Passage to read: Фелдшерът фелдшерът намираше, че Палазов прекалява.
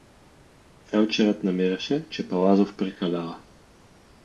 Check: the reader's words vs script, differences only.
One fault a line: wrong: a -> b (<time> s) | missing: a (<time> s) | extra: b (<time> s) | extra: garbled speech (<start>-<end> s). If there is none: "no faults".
missing: фелдшерът (1.4 s)